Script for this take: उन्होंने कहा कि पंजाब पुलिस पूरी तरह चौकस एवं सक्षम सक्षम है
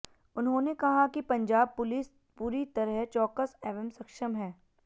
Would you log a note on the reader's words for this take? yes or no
yes